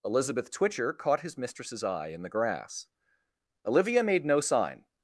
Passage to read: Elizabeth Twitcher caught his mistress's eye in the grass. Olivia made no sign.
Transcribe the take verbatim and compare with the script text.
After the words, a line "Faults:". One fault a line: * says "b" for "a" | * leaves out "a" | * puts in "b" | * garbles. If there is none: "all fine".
Elizabeth Twitcher caught his mistress's eye in the grass. Olivia made no sign.
Faults:
all fine